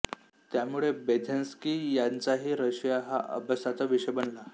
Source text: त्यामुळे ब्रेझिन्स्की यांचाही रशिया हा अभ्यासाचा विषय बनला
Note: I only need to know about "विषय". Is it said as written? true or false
true